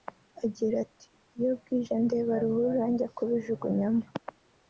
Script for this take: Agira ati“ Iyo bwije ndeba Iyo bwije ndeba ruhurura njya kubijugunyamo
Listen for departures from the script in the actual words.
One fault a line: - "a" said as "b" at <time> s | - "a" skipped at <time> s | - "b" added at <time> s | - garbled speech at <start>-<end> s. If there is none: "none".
- "Iyo bwije ndeba" skipped at 2.3 s